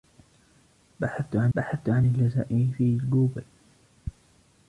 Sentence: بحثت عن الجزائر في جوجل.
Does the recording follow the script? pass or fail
fail